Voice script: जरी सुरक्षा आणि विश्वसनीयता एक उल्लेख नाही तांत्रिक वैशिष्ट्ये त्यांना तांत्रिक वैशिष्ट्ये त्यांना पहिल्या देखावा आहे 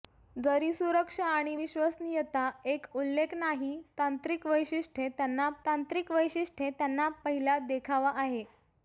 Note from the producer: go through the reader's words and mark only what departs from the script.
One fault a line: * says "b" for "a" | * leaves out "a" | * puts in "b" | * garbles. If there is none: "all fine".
all fine